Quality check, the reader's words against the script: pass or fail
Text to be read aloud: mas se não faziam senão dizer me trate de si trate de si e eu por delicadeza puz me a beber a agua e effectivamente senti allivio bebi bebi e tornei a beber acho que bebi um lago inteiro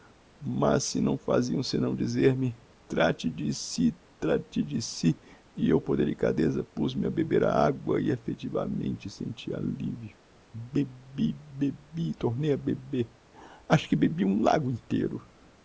pass